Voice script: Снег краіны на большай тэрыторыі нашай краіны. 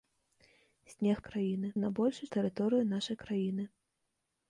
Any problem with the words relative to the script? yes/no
no